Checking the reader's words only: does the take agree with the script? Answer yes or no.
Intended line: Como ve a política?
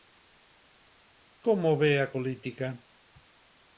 yes